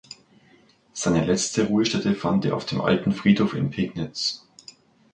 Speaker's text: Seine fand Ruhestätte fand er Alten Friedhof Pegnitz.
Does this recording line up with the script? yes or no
no